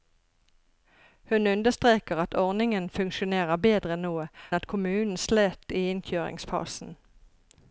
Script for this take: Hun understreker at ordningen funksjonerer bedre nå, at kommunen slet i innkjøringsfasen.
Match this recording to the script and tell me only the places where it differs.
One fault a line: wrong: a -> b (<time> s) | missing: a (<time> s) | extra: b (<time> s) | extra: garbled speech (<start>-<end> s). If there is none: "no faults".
no faults